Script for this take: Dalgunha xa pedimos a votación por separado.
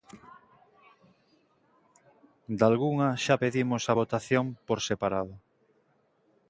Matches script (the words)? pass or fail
pass